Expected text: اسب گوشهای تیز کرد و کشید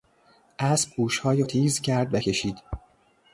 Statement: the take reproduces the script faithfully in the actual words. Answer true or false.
true